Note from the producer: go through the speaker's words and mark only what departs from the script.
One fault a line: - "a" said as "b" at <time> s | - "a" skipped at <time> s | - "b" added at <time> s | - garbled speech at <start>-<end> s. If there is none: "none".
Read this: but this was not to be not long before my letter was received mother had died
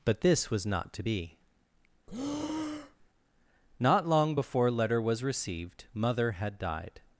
- "my" skipped at 4.7 s